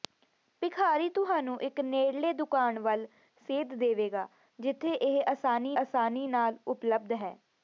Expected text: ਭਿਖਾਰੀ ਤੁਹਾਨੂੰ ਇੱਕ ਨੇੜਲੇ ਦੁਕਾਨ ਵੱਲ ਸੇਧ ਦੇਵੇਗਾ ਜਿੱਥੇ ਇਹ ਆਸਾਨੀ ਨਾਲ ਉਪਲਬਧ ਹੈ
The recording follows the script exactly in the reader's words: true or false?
false